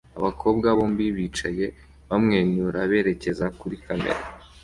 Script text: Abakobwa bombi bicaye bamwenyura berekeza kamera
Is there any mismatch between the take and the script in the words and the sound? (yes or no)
yes